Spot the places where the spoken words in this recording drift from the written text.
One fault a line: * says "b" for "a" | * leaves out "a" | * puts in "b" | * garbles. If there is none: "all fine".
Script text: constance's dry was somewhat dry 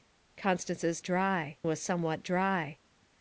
all fine